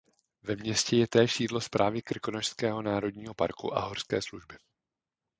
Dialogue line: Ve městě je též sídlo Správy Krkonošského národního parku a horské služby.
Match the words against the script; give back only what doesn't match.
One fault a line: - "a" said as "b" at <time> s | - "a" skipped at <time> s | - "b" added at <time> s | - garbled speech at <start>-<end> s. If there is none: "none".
none